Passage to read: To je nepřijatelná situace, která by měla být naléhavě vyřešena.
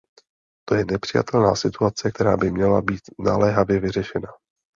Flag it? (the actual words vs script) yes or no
no